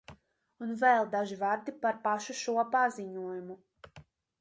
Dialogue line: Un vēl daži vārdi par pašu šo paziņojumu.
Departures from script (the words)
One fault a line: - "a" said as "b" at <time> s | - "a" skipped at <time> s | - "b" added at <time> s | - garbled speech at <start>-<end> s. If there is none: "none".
none